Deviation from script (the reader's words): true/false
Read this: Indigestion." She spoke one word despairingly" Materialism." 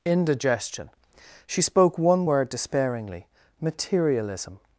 false